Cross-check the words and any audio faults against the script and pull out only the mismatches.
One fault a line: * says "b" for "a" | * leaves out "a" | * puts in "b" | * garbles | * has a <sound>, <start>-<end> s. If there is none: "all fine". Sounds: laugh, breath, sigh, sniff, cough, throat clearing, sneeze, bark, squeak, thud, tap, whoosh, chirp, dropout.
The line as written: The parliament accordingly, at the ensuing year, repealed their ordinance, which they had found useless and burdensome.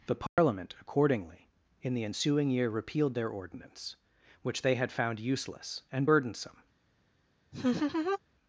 * has a dropout, 0.3-0.4 s
* says "in" for "at"
* has a laugh, 7.5-8.2 s